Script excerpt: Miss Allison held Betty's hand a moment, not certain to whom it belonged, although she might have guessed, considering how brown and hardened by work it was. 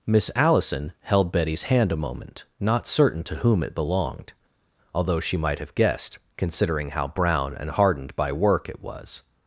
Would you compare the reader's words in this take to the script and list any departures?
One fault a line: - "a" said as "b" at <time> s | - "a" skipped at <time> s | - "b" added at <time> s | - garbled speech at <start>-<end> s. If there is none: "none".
none